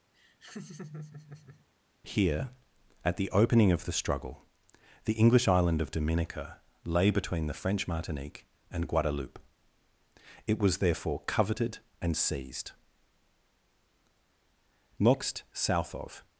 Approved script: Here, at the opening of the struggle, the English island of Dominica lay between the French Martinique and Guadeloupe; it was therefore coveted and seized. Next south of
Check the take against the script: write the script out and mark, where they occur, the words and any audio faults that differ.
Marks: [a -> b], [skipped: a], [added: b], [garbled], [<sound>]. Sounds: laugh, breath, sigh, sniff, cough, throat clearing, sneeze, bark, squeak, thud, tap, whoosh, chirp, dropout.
[laugh] Here, at the opening of the struggle, the English island of Dominica lay between the French Martinique and Guadeloupe; it was therefore coveted and seized. Next south of